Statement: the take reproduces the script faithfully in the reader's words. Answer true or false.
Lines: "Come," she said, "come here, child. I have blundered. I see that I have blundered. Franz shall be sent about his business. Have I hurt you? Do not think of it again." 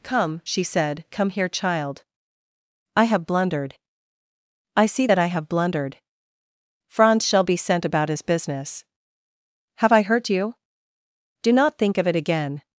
true